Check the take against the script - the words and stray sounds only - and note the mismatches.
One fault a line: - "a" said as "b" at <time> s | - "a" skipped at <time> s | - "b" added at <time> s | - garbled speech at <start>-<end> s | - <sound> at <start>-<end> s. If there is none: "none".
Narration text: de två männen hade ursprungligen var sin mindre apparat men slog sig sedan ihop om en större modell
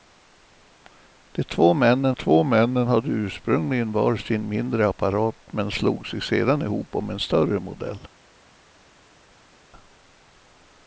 - "två männen" added at 2.1 s